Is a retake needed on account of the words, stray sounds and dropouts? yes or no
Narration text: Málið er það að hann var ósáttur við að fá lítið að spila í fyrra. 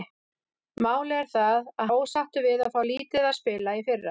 yes